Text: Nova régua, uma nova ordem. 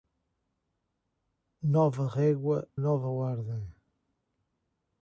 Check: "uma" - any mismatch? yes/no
yes